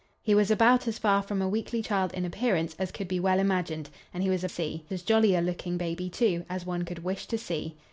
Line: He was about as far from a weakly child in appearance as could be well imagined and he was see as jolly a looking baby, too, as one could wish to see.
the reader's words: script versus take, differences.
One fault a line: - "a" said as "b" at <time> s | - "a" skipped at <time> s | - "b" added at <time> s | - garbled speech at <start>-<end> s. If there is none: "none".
none